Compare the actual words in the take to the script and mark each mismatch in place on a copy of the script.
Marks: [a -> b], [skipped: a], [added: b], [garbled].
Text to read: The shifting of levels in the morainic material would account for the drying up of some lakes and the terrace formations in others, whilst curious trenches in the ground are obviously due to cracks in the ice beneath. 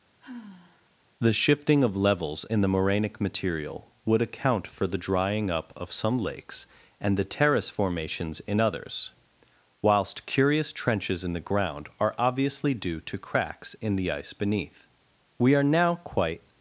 The shifting of levels in the morainic material would account for the drying up of some lakes and the terrace formations in others, whilst curious trenches in the ground are obviously due to cracks in the ice beneath. [added: We are now quite]